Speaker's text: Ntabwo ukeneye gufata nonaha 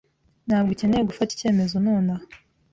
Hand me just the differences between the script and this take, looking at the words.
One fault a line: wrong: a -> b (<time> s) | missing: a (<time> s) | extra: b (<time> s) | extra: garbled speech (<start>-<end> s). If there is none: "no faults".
extra: icyemezo (1.3 s)